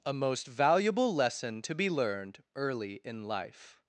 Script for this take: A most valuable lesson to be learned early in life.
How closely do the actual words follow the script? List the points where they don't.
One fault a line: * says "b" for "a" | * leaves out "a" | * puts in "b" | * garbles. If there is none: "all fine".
all fine